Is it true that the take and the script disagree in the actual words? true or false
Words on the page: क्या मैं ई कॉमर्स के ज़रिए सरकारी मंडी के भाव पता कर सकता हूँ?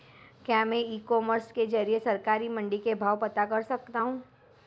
false